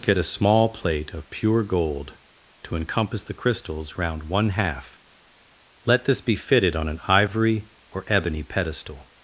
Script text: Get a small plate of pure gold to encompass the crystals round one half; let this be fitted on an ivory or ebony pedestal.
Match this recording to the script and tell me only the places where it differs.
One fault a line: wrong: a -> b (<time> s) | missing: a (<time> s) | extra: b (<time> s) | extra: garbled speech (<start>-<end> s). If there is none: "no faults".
no faults